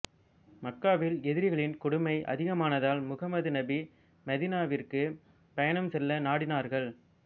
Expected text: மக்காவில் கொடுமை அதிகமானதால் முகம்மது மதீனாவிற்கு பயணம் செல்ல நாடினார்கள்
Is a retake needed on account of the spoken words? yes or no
yes